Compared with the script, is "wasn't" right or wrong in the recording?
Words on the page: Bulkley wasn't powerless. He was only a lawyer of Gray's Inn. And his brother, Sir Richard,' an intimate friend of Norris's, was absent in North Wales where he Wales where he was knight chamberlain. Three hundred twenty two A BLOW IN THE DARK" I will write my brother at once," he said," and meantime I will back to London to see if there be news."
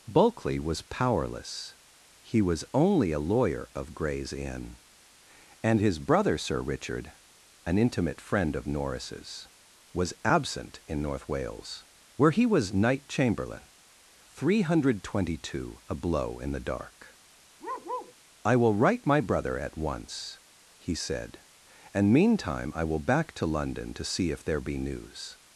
wrong